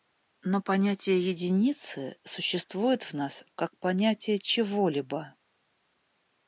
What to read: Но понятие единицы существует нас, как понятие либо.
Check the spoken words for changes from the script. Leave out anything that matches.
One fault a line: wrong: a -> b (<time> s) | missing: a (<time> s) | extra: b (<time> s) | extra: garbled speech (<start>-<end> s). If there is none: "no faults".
extra: в (3.0 s)
extra: чего (4.4 s)